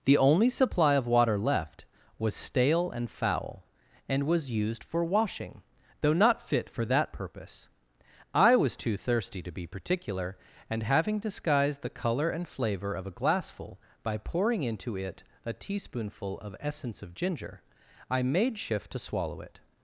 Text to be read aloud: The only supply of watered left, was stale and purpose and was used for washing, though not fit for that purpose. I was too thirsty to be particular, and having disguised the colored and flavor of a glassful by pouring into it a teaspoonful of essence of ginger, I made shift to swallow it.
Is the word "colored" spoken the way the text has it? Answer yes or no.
no